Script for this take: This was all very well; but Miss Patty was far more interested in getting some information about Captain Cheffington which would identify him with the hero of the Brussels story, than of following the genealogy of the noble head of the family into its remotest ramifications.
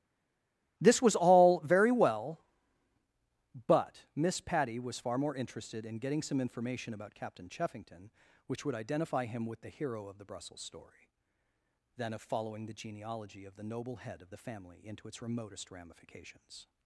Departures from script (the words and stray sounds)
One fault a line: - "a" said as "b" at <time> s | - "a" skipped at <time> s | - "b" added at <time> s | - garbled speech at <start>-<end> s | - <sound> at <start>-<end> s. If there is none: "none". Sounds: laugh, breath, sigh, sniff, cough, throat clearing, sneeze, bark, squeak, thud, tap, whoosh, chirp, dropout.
none